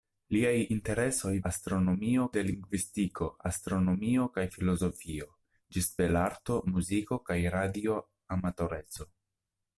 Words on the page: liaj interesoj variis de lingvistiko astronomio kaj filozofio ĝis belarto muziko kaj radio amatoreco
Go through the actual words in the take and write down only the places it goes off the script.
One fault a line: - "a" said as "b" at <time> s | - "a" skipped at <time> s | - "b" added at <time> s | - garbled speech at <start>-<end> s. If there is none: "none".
- "variis" said as "astronomio" at 1.5 s